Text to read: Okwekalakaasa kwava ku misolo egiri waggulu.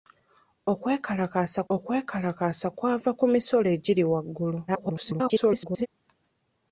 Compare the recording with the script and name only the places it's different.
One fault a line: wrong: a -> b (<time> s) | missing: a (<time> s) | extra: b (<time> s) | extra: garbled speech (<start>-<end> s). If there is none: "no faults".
extra: okwekalakaasa (1.7 s)
extra: garbled speech (4.7-5.9 s)